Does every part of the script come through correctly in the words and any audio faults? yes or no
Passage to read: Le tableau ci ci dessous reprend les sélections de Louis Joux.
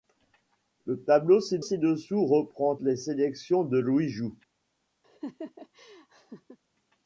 no